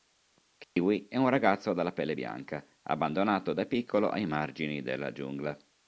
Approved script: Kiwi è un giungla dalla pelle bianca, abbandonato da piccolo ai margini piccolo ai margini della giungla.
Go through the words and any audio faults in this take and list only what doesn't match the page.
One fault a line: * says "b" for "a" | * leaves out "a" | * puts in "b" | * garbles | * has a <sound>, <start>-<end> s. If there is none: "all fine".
* has a dropout, 0.6-0.8 s
* says "ragazzo" for "giungla"
* leaves out "piccolo ai margini"